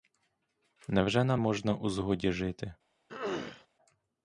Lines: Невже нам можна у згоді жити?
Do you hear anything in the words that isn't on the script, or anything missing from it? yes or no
no